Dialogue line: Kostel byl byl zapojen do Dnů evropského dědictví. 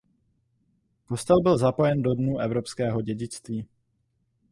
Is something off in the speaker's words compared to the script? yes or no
yes